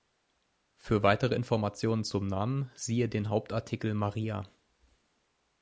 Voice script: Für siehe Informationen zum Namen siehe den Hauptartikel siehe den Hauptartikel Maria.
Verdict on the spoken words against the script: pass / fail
fail